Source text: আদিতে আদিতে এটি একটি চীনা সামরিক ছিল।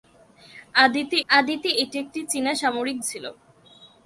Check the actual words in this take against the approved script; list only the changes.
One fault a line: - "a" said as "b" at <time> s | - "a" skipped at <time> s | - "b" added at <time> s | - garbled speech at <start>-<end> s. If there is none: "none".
none